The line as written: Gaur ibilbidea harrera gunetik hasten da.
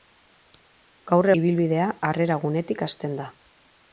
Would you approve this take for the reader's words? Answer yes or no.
yes